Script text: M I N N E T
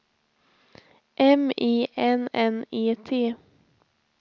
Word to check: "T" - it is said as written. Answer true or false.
true